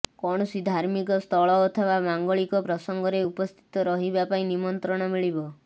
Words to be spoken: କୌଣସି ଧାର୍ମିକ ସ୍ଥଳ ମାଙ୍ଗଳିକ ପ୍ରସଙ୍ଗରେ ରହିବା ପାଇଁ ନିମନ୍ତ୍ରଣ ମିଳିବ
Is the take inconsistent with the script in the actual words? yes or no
yes